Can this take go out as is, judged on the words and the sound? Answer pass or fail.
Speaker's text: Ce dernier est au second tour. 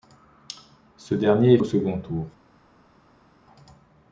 pass